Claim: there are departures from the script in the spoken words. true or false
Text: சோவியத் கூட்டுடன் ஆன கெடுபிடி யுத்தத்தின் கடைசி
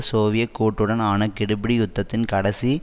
false